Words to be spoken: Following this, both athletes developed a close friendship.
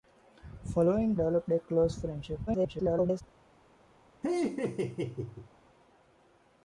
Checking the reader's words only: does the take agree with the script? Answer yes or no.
no